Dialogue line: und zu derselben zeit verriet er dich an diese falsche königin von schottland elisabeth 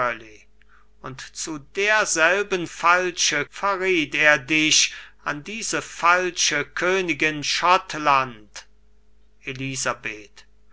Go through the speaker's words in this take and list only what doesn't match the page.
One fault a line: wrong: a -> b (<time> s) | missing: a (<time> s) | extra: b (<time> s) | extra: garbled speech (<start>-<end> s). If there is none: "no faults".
wrong: zeit -> falsche (2.6 s)
missing: von (7.4 s)